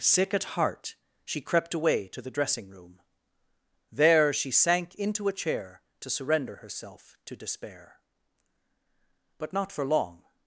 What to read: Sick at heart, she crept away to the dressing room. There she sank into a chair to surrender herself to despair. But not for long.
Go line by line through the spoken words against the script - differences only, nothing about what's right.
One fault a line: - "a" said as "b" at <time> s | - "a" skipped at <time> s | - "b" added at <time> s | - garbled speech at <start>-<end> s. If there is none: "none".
none